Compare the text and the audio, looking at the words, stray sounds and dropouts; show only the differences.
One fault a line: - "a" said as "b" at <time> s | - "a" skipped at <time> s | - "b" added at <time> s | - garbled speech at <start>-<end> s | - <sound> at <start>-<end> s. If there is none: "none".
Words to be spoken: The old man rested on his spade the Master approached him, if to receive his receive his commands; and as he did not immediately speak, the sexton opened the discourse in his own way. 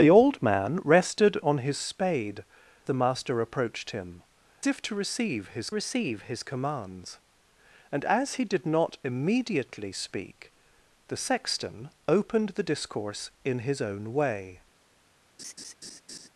- laugh at 15.4-16.3 s